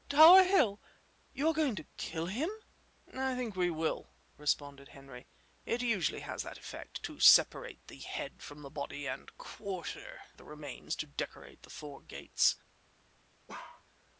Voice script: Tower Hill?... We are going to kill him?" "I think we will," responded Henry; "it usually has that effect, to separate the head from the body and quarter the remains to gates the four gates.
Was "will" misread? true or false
false